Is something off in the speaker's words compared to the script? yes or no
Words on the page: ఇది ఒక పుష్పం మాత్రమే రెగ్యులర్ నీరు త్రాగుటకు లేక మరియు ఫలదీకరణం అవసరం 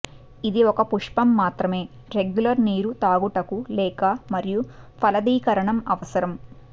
no